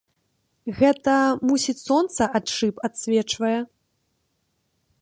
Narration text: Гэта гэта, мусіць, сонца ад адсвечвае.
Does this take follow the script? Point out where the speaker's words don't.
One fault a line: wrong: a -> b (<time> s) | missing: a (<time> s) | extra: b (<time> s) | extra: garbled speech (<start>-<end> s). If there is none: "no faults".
missing: гэта (1.1 s)
extra: шыб (2.5 s)